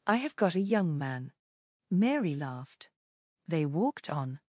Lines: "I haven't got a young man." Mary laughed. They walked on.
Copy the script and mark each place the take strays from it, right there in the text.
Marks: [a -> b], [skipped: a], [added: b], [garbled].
"I [haven't -> have] got a young man." Mary laughed. They walked on.